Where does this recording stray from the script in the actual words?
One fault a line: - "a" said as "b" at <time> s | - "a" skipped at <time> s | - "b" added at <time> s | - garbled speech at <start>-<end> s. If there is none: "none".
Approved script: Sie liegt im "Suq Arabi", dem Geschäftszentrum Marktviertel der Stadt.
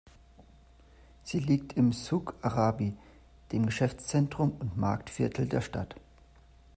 - "und" added at 4.6 s